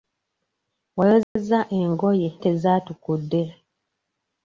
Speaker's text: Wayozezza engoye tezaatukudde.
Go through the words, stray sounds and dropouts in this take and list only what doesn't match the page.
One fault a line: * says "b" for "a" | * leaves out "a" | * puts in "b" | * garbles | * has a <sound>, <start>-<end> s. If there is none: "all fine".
* has a dropout, 1.2-1.4 s